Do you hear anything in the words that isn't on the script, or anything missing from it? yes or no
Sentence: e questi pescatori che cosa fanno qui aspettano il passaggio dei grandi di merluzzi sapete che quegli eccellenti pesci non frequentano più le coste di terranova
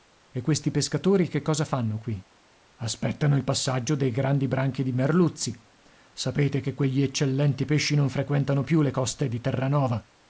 yes